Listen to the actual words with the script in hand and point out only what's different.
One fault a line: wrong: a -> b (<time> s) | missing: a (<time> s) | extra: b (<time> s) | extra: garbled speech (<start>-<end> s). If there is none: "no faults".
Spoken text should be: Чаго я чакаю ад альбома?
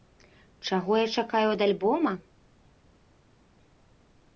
no faults